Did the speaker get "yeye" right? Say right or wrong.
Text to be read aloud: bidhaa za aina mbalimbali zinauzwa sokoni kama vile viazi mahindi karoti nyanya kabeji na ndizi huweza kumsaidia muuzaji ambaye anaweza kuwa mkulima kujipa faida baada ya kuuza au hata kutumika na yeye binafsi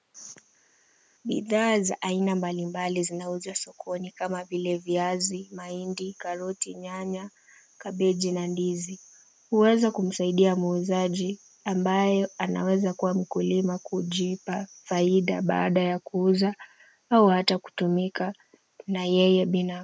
right